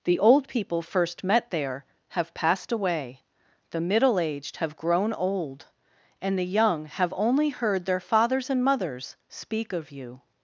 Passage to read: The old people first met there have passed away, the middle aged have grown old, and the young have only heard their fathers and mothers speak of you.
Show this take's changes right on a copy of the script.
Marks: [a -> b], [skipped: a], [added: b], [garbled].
The old people first met there have passed away, the middle aged have grown old, and the young have only heard their fathers and mothers speak of you.